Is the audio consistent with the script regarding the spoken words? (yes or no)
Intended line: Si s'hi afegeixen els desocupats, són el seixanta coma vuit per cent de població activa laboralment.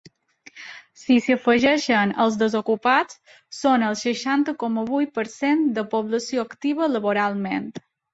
yes